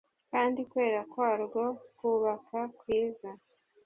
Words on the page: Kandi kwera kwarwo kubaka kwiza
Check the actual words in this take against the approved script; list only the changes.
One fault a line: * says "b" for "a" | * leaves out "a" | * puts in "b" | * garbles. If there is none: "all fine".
all fine